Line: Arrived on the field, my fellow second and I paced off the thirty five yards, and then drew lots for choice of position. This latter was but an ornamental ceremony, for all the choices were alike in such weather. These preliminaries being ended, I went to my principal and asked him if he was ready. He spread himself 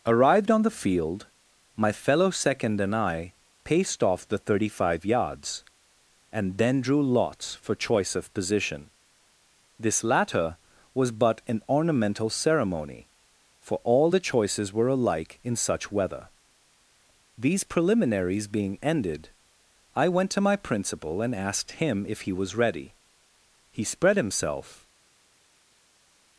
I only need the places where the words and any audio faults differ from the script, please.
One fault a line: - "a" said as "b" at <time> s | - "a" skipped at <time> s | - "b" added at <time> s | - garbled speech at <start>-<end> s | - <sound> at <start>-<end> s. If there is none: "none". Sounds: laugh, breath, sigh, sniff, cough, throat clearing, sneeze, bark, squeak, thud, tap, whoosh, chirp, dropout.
none